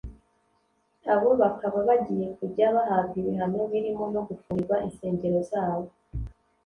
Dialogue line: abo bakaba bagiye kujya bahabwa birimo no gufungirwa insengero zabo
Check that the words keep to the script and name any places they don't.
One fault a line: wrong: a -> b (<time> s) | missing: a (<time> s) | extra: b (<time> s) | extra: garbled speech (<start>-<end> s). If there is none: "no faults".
extra: ibihano (3.2 s)